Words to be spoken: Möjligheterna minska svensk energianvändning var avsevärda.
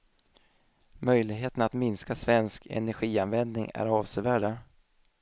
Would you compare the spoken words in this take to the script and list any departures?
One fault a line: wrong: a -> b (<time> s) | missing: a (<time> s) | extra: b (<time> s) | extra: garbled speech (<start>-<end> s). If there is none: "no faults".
extra: att (1.6 s)
wrong: var -> är (3.7 s)